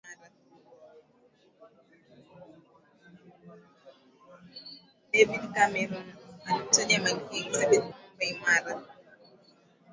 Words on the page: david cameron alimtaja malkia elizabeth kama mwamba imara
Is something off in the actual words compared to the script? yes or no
yes